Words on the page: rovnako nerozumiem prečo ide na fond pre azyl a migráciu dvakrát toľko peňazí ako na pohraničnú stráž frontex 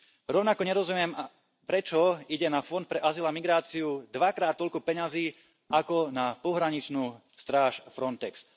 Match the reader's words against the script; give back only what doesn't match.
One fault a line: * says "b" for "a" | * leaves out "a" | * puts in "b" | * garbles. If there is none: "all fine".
all fine